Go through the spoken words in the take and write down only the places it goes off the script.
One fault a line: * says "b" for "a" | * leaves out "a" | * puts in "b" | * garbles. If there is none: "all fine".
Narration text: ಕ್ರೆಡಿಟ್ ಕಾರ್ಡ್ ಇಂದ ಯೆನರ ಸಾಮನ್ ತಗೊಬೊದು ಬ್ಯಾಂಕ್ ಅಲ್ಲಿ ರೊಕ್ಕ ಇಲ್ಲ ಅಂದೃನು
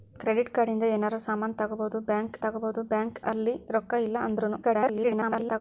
* puts in "ತಗೊಬೊದು ಬ್ಯಾಂಕ್"
* garbles